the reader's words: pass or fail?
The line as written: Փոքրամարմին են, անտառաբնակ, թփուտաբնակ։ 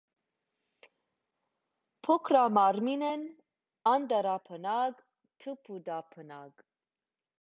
pass